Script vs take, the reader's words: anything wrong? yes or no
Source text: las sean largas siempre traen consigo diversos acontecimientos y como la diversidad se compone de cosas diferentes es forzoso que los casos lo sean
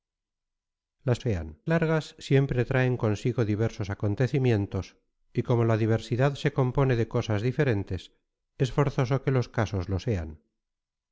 no